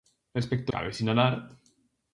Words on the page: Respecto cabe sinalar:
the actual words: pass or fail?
pass